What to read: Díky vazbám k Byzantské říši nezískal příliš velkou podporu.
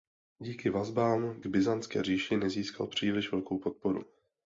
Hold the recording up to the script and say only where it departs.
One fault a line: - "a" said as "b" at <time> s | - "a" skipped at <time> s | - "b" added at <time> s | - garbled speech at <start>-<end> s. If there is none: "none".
none